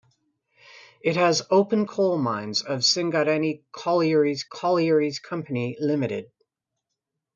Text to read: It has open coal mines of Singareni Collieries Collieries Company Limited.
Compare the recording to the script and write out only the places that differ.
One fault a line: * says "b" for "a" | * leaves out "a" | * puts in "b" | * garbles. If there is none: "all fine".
all fine